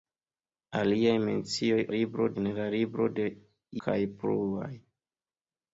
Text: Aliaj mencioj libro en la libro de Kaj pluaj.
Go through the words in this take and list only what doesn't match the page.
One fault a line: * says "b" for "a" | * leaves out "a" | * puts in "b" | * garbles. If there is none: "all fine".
all fine